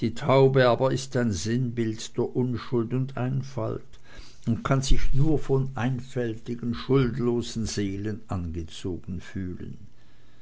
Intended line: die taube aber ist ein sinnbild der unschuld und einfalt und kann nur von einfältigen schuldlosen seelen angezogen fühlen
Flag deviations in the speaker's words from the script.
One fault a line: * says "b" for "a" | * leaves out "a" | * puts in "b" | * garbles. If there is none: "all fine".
* puts in "sich"